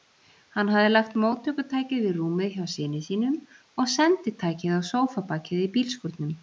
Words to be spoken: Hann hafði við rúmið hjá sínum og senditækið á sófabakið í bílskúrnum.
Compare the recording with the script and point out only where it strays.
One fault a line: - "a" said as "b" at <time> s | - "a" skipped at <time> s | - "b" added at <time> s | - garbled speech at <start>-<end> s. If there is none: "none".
- "lagt móttökutækið" added at 0.9 s
- "syni" added at 2.8 s